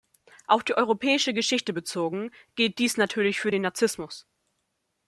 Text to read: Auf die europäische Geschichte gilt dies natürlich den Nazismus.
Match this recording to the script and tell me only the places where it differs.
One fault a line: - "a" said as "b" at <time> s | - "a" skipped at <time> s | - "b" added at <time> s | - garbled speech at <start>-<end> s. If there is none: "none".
- "bezogen" added at 1.7 s
- "für" added at 3.4 s